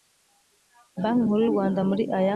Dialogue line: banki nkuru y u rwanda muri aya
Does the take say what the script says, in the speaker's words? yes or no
yes